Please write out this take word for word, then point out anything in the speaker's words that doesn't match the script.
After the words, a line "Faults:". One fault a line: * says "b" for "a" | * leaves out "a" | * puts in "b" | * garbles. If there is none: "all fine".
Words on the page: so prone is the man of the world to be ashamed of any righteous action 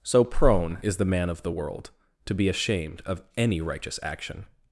so prone is the man of the world to be ashamed of any righteous action
Faults:
all fine